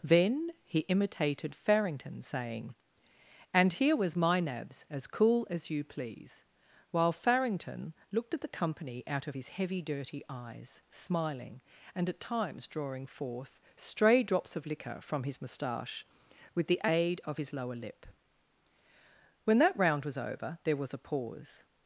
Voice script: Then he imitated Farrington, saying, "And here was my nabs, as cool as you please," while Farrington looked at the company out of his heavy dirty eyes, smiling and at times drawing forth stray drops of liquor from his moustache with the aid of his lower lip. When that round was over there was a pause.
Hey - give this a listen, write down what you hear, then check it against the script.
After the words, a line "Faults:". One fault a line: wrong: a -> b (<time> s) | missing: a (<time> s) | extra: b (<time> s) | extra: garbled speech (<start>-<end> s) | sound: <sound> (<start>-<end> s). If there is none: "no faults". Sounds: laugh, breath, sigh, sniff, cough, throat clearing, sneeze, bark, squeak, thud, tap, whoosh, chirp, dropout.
Then he imitated Farrington, saying, "And here was my nabs, as cool as you please," while Farrington looked at the company out of his heavy dirty eyes, smiling and at times drawing forth stray drops of liquor from his moustache with the aid of his lower lip. When that round was over there was a pause.
Faults:
no faults